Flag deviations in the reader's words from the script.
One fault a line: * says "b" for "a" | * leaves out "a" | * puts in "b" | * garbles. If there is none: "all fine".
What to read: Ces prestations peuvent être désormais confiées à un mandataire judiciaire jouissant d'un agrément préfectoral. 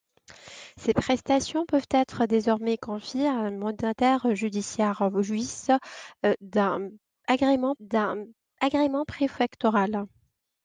* puts in "d'un agrément"